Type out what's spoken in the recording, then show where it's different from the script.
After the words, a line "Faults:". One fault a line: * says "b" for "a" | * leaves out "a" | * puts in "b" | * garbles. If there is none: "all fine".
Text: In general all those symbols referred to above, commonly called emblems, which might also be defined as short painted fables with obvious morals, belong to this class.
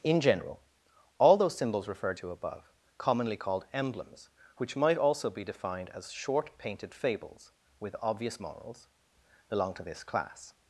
In general all those symbols referred to above, commonly called emblems, which might also be defined as short painted fables with obvious morals, belong to this class.
Faults:
all fine